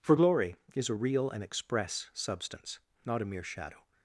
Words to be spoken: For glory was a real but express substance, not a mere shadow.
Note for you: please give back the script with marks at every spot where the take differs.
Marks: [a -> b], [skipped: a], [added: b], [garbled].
For glory [was -> is] a real [but -> and] express substance, not a mere shadow.